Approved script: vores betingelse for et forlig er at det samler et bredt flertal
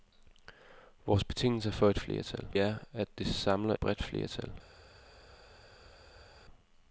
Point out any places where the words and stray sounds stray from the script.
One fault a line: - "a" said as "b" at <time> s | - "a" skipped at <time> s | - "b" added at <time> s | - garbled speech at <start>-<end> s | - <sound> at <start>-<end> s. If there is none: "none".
- "forlig" said as "flertal" at 2.0 s
- "et" skipped at 3.7 s